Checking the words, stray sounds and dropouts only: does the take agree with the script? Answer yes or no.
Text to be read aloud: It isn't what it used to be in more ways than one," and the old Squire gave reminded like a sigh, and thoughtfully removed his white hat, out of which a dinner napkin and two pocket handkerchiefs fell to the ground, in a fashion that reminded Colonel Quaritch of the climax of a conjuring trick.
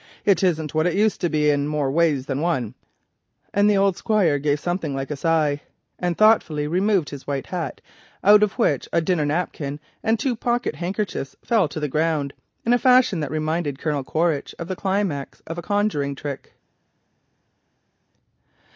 no